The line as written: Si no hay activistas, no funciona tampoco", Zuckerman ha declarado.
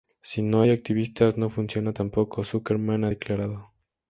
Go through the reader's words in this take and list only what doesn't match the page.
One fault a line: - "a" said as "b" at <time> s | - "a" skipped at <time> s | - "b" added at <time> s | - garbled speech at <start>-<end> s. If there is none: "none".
none